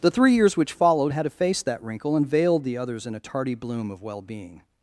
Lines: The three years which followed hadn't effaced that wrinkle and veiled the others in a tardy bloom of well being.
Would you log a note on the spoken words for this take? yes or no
yes